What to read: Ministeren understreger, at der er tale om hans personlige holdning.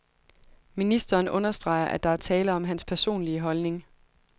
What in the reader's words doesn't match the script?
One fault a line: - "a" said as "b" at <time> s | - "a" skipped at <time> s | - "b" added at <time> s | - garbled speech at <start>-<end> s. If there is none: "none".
none